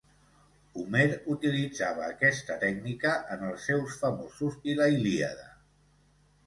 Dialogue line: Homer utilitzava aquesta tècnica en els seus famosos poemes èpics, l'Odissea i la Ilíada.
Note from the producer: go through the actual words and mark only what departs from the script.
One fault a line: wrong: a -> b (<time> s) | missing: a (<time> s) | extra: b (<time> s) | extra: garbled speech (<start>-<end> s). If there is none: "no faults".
missing: poemes èpics l'Odissea (4.6 s)